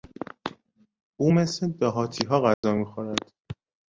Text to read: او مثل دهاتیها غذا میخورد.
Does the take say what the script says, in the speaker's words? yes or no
yes